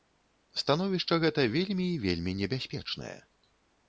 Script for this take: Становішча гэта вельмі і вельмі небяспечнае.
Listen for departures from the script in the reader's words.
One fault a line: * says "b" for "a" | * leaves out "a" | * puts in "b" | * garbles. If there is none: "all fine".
all fine